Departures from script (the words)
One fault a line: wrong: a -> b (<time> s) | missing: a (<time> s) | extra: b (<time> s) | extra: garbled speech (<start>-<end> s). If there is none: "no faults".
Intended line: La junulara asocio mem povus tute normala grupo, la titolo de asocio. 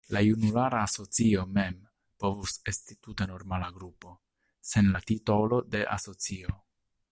extra: esti (2.7 s)
extra: sen (4.7 s)